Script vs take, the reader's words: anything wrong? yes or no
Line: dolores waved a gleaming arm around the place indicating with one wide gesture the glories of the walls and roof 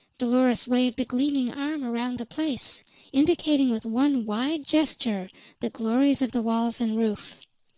no